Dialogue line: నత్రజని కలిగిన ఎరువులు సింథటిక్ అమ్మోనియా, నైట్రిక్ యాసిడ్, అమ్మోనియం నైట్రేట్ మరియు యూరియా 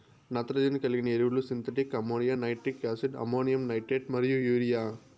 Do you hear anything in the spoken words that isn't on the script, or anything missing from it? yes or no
no